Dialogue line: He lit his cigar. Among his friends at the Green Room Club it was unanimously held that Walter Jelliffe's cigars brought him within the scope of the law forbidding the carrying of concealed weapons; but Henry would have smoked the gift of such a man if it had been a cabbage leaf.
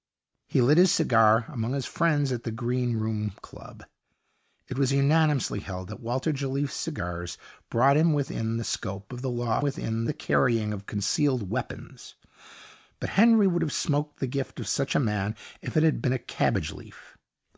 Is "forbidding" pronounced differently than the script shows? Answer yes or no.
yes